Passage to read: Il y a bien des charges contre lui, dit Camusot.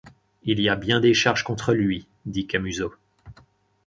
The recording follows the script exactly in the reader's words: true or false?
true